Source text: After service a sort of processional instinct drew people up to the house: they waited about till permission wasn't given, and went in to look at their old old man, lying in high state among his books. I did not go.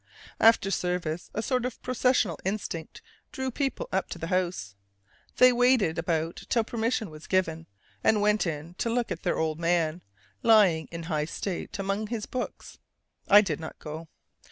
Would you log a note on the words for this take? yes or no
yes